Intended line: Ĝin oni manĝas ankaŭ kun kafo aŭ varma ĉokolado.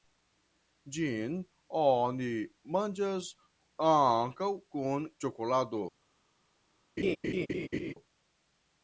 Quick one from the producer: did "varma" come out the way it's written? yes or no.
no